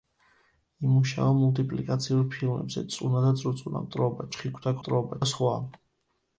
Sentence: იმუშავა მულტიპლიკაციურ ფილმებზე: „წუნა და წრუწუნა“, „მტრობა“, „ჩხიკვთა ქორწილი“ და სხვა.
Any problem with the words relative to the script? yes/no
yes